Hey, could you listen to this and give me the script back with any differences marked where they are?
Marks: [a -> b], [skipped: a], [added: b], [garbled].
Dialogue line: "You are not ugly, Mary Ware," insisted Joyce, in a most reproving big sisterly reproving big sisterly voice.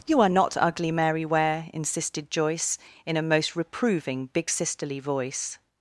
"You are not ugly, Mary Ware," insisted Joyce, in a most reproving big sisterly [skipped: reproving big sisterly] voice.